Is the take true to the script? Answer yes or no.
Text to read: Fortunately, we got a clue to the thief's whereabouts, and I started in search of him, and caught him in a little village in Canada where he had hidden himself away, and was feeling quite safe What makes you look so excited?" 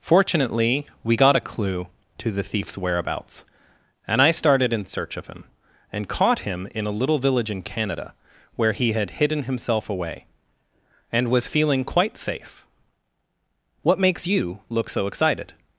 yes